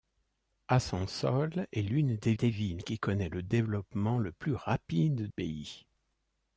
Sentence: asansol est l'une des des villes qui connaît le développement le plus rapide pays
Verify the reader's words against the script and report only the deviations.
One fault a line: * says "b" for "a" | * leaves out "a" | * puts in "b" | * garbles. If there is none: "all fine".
all fine